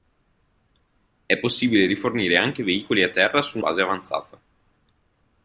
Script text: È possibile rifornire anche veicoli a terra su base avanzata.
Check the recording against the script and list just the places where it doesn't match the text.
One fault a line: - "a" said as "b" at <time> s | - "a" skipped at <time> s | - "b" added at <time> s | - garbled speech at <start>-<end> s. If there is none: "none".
none